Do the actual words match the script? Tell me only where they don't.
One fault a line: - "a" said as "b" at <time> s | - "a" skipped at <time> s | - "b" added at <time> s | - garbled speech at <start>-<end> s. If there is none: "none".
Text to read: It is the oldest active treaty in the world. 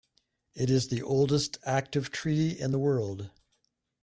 none